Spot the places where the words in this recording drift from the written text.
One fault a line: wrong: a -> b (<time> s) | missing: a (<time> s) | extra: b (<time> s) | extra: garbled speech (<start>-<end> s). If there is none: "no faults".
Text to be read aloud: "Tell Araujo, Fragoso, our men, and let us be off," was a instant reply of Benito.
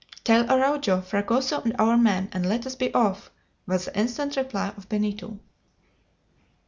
extra: and (1.6 s)
wrong: a -> the (3.9 s)